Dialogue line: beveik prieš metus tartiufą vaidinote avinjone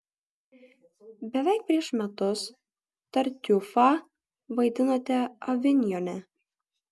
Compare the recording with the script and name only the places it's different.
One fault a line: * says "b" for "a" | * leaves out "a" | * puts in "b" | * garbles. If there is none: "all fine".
all fine